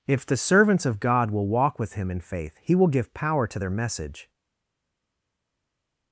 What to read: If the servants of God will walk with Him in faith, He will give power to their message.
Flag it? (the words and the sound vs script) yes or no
no